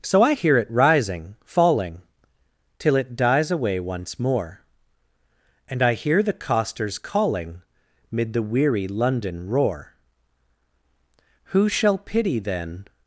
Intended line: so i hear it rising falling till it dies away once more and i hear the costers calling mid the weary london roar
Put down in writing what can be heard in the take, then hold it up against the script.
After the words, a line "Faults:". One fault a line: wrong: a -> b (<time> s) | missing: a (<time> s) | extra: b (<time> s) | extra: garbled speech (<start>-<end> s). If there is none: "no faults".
so i hear it rising falling till it dies away once more and i hear the costers calling mid the weary london roar who shall pity then
Faults:
extra: who shall pity then (11.5 s)